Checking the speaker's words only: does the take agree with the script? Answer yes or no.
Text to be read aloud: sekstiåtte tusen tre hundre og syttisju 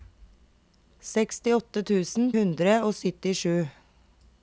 no